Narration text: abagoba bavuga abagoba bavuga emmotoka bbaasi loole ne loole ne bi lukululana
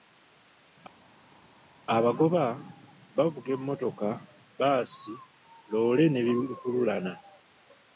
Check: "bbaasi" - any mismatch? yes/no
no